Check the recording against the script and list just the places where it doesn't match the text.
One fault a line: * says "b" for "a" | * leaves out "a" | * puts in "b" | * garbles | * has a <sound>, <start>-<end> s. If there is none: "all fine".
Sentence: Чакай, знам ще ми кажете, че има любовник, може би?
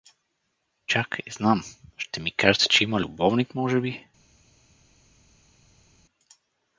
all fine